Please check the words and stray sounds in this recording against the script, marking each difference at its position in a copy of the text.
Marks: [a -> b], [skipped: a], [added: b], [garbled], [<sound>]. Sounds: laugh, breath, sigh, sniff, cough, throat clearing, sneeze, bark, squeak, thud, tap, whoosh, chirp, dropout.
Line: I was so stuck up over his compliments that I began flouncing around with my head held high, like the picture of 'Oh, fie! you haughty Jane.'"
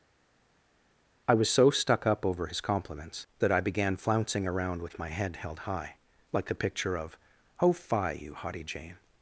I was so stuck up over his compliments that I began flouncing around with my head held high, like the picture of 'Oh, fie! you haughty Jane.'"